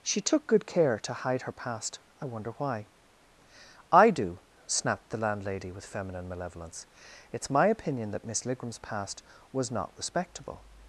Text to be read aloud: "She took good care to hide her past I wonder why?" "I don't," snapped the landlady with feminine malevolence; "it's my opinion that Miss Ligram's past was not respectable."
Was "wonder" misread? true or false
false